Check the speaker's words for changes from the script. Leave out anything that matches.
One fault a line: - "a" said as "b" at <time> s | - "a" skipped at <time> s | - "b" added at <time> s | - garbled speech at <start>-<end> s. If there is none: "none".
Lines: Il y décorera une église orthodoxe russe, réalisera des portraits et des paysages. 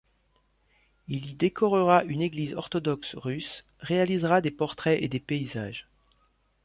none